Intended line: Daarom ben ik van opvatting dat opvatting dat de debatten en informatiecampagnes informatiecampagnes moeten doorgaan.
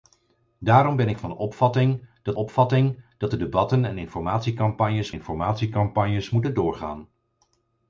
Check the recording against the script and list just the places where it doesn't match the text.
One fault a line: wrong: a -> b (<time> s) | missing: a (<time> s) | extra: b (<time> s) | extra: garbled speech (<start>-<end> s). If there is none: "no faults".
no faults